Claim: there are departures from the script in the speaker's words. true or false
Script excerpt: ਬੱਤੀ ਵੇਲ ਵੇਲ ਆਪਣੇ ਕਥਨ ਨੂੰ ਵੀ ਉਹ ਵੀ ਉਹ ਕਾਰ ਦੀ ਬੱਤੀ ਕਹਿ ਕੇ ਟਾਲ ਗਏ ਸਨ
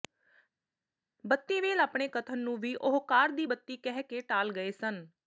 true